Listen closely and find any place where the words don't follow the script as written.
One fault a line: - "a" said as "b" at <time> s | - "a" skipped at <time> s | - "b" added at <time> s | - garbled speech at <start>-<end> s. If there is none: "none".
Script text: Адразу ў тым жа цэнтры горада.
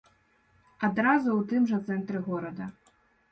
none